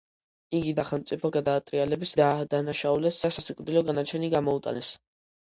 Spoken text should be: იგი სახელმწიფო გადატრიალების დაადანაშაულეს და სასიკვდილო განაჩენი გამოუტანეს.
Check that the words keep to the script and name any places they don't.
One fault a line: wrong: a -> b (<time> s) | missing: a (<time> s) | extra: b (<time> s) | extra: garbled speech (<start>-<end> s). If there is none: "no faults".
no faults